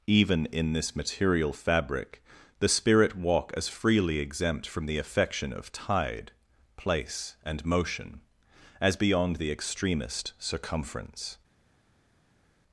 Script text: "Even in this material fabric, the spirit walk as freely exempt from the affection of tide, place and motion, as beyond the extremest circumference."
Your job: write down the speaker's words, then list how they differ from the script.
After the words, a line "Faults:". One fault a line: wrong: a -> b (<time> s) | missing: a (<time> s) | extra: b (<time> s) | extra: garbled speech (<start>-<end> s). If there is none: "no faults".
"Even in this material fabric, the spirit walk as freely exempt from the affection of tide, place and motion, as beyond the extremest circumference."
Faults:
no faults